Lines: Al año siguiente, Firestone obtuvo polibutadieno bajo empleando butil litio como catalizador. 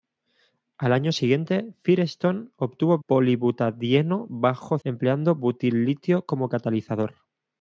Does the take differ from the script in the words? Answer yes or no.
no